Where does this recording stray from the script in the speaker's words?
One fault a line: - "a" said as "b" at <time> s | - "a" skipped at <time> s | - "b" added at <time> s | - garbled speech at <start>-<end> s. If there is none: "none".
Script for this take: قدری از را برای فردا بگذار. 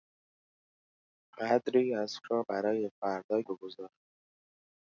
none